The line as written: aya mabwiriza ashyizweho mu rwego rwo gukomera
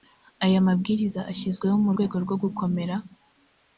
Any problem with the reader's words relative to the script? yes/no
no